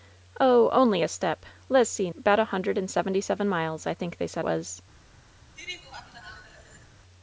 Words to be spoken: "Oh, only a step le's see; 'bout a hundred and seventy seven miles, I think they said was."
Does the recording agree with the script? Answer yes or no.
yes